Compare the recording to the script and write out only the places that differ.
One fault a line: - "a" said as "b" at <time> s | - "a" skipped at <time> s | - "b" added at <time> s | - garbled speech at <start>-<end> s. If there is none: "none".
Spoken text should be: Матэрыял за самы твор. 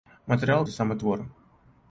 none